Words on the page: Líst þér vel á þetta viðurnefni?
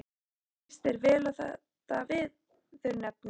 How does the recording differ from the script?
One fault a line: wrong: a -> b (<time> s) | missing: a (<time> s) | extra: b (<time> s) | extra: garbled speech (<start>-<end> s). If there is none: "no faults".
no faults